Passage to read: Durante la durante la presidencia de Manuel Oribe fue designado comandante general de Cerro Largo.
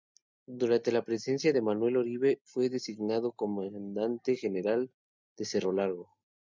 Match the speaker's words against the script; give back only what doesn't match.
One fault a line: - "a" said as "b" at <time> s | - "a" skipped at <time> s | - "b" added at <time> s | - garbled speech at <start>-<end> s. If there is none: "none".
- "durante la" skipped at 1.1 s